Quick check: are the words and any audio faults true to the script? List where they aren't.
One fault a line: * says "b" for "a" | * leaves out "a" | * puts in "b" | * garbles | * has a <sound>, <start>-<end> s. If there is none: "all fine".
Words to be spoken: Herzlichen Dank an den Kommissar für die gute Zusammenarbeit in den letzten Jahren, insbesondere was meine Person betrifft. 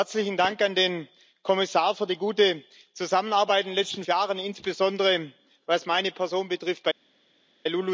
all fine